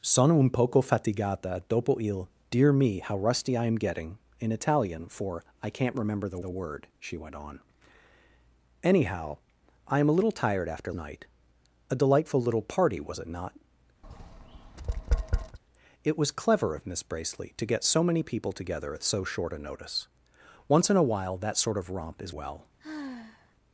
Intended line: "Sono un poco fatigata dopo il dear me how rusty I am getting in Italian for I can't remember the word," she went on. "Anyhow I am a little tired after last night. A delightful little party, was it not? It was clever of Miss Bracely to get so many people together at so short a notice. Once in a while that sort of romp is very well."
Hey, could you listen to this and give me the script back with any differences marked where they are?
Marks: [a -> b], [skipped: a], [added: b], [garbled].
"Sono un poco fatigata dopo il dear me how rusty I am getting in Italian for I can't remember the [added: the] word," she went on. "Anyhow I am a little tired after [skipped: last] night. A delightful little party, was it not? It was clever of Miss Bracely to get so many people together at so short a notice. Once in a while that sort of romp is [skipped: very] well."